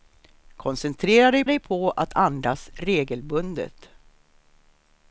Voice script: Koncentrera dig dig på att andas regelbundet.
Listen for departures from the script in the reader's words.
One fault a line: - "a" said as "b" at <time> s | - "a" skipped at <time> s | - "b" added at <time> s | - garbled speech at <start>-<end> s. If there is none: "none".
none